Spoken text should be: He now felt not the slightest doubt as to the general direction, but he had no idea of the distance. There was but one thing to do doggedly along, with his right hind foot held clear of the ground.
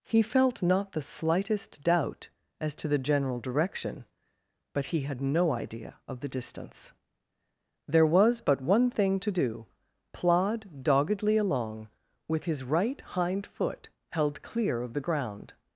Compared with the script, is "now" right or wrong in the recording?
wrong